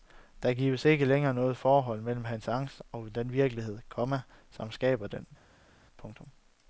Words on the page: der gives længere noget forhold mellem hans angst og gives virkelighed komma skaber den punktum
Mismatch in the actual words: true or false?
true